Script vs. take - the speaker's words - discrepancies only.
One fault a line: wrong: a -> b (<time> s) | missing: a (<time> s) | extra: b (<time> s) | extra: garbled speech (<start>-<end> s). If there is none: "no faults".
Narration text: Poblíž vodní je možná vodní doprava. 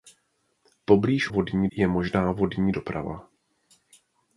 no faults